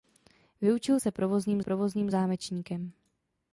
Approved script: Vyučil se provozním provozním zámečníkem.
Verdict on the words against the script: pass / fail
pass